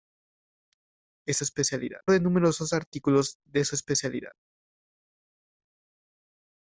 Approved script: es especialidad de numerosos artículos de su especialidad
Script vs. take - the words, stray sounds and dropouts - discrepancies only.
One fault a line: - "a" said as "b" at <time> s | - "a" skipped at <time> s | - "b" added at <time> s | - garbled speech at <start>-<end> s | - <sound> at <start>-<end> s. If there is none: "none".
none